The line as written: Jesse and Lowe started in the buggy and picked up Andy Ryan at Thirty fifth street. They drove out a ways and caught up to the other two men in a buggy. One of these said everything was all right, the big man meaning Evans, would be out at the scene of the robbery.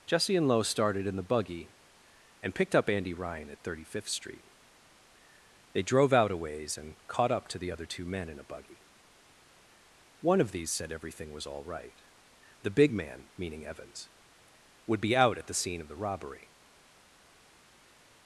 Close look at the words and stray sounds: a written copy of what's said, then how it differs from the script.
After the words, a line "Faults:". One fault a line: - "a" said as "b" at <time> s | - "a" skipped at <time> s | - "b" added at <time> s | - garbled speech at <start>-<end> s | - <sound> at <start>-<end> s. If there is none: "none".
Jesse and Lowe started in the buggy and picked up Andy Ryan at Thirty fifth street. They drove out a ways and caught up to the other two men in a buggy. One of these said everything was all right, the big man meaning Evans, would be out at the scene of the robbery.
Faults:
none